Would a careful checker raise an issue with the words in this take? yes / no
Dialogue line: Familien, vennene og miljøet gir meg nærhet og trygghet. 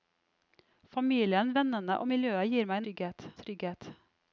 yes